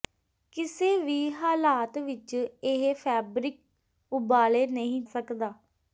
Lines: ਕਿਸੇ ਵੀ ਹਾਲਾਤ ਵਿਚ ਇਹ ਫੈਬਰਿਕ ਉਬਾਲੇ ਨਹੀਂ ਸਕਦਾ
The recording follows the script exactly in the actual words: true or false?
true